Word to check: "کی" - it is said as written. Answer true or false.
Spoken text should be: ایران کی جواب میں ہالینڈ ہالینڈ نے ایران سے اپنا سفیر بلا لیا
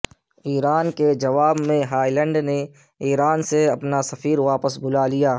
false